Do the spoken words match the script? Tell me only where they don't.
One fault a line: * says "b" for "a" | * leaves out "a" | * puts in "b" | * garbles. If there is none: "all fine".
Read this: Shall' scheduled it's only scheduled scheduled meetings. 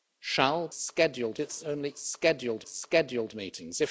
all fine